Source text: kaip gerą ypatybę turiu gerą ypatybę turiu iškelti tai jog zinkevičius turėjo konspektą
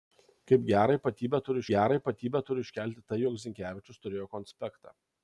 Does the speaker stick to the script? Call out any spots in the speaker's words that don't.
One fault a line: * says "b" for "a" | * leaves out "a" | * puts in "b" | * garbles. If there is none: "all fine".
all fine